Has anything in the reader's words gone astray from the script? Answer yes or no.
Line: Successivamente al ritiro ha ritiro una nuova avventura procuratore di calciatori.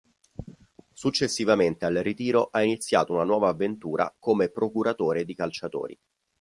yes